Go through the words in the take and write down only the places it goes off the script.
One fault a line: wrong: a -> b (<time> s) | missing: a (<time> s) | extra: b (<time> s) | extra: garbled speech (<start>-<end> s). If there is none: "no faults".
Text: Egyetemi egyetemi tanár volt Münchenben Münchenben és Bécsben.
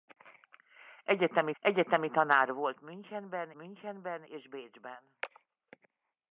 no faults